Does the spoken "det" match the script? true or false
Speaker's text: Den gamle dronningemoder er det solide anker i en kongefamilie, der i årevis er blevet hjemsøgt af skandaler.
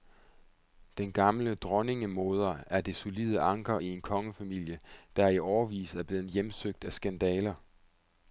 true